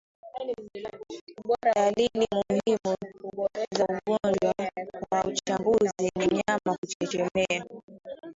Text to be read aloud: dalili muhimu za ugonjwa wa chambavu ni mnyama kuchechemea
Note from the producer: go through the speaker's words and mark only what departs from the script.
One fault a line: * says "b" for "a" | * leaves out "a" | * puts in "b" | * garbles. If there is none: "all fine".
all fine